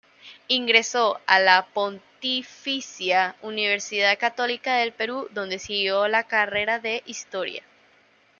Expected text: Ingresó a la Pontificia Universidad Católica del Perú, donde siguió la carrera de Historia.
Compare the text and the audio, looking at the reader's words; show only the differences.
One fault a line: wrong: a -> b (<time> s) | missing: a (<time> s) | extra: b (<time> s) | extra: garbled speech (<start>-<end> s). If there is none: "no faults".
no faults